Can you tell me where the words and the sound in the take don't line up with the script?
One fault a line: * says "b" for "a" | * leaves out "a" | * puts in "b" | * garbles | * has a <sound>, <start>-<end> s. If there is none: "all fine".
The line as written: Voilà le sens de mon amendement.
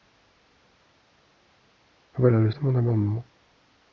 * leaves out "sens"